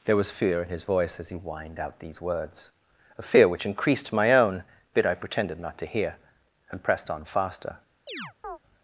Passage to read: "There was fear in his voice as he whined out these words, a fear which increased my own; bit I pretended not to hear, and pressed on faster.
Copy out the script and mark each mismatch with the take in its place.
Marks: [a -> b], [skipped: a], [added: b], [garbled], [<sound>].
"There was fear in his voice as he whined out these words, a fear which increased my own; bit I pretended not to hear, and pressed on faster. [chirp]